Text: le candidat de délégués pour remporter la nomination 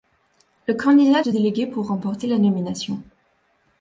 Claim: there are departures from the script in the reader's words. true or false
false